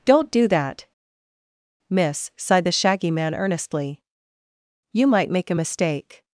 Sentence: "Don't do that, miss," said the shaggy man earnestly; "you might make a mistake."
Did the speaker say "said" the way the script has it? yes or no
no